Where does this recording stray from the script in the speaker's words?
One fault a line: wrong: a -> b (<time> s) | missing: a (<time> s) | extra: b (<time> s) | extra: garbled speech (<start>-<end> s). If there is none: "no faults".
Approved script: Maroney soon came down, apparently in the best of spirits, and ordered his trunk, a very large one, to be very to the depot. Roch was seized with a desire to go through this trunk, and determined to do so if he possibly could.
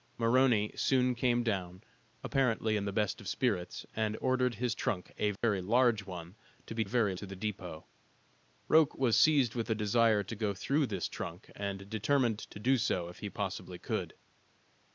no faults